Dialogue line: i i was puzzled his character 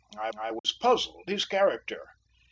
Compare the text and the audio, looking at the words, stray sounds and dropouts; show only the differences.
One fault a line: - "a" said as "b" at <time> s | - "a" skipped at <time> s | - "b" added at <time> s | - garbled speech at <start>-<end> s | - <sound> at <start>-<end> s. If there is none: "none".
- dropout at 0.6-0.6 s